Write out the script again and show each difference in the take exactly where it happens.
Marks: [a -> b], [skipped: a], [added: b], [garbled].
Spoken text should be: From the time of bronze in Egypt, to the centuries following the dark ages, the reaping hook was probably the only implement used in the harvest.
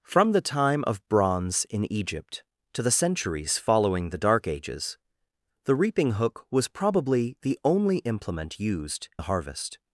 From the time of bronze in Egypt, to the centuries following the dark ages, the reaping hook was probably the only implement used [skipped: in] the harvest.